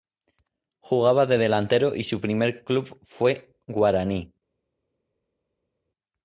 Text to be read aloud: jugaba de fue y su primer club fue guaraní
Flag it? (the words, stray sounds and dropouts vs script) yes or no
yes